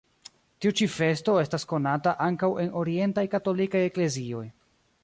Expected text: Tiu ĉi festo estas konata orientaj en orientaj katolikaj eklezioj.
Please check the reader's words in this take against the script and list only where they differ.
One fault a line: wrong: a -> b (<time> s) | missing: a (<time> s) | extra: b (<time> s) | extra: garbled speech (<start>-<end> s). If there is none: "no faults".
wrong: orientaj -> ankaŭ (2.3 s)